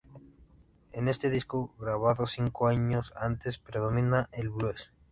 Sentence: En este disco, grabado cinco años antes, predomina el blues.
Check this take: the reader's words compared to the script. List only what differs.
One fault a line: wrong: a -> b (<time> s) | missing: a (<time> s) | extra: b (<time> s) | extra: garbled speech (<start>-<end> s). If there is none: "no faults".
no faults